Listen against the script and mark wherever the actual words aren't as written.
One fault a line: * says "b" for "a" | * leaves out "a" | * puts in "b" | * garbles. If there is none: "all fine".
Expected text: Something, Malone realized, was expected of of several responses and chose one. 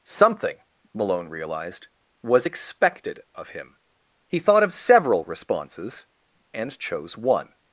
* puts in "him He thought"